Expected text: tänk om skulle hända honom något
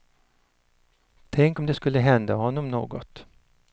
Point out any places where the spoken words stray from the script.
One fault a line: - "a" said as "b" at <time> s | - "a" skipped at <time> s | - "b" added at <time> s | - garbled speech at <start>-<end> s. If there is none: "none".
- "det" added at 1.6 s